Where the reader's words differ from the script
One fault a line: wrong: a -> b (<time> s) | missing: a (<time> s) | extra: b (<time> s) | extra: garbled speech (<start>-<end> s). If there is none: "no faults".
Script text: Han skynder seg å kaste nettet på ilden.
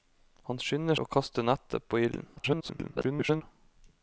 missing: seg (1.0 s)
extra: garbled speech (2.4-3.4 s)